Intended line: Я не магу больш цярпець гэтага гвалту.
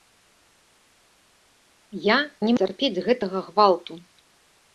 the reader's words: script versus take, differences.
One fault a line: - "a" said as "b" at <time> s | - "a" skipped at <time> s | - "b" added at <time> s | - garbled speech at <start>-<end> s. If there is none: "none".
- "магу больш" skipped at 2.5 s